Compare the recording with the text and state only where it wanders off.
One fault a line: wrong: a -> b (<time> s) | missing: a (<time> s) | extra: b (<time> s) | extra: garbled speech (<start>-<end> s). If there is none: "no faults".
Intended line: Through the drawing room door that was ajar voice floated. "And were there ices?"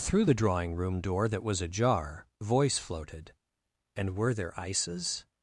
no faults